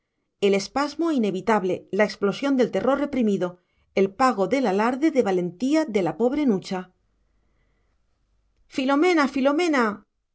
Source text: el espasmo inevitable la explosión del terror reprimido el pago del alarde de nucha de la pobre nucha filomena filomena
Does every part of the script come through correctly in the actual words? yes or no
no